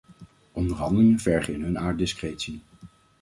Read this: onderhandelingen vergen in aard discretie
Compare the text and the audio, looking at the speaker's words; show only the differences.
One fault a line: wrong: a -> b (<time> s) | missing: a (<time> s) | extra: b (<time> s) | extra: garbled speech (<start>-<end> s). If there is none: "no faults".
extra: hun (1.6 s)